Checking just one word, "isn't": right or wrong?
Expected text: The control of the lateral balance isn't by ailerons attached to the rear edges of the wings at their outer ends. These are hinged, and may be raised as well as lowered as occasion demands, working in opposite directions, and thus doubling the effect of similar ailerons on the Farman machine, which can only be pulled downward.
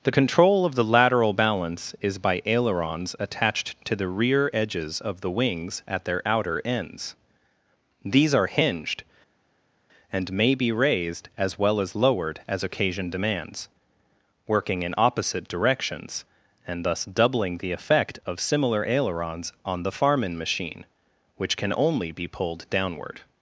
wrong